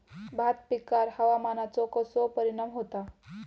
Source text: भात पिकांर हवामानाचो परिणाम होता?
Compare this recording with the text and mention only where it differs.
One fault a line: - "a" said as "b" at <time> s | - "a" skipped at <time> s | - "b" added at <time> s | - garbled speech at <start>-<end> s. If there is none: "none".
- "कसो" added at 1.9 s